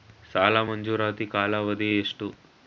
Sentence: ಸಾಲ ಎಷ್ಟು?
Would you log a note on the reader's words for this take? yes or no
yes